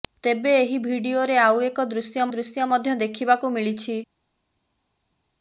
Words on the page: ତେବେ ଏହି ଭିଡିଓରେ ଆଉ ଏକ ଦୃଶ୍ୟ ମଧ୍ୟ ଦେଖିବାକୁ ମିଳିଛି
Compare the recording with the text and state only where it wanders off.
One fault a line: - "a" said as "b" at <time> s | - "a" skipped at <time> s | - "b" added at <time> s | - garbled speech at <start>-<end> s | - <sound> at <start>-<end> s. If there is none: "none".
- "ଦୃଶ୍ୟ" added at 2.3 s